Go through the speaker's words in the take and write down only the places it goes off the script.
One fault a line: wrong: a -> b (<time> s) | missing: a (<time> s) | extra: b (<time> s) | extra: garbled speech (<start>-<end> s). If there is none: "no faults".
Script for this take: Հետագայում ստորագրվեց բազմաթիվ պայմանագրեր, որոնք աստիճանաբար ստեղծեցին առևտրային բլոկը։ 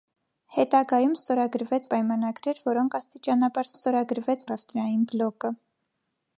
missing: բազմաթիվ (1.9 s)
wrong: ստեղծեցին -> ստորագրվեց (3.7 s)